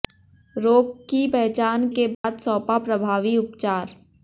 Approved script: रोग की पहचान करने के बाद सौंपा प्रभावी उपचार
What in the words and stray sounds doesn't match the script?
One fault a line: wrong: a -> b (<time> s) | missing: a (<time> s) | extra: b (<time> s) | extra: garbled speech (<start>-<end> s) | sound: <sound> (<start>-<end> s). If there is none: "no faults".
missing: करने (1.9 s)
sound: dropout (2.1-2.2 s)